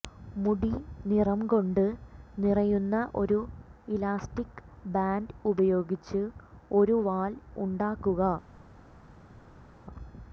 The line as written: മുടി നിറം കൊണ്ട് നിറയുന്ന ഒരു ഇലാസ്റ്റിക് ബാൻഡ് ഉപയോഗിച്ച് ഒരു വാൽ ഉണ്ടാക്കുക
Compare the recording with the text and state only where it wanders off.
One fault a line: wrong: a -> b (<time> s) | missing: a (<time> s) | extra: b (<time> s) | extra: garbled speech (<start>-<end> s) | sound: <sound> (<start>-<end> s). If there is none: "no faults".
no faults